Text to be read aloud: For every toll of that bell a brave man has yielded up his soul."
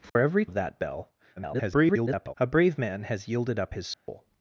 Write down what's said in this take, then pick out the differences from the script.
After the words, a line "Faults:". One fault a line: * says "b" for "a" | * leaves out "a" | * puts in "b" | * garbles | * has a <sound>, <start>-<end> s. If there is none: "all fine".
For every of that bell [garbled] a brave man has yielded up his soul."
Faults:
* has a dropout, 0.1-0.2 s
* leaves out "toll"
* garbles
* has a dropout, 3.9-4.1 s